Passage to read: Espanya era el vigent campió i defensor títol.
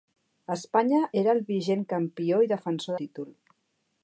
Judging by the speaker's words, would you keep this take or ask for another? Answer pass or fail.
pass